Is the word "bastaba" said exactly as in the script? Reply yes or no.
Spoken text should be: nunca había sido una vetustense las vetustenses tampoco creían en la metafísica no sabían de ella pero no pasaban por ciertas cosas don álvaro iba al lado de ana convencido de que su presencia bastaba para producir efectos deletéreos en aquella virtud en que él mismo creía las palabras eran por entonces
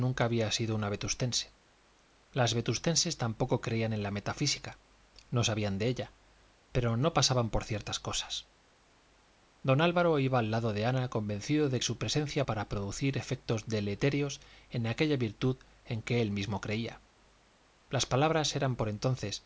no